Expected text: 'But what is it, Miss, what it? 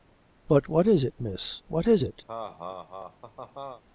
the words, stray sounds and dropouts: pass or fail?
fail